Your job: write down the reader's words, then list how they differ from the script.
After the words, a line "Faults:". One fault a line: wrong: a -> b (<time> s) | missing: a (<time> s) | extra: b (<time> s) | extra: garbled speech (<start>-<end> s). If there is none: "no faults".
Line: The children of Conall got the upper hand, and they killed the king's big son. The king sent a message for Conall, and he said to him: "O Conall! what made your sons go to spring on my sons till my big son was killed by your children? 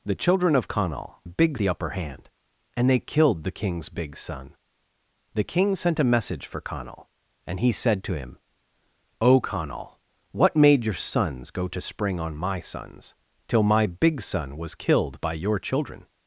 The children of Conall big the upper hand, and they killed the king's big son. The king sent a message for Conall, and he said to him: "O Conall! what made your sons go to spring on my sons till my big son was killed by your children?
Faults:
wrong: got -> big (1.2 s)